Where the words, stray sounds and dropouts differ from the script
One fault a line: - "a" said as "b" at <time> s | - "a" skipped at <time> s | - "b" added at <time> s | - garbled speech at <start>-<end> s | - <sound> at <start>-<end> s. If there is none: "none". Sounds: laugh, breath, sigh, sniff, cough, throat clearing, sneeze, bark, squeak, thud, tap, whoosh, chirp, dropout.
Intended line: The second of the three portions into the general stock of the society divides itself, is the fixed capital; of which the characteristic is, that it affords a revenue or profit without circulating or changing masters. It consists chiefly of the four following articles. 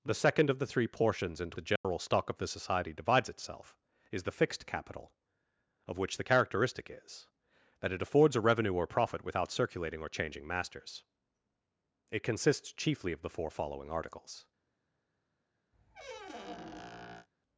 - dropout at 1.8-1.8 s
- squeak at 15.7-17.3 s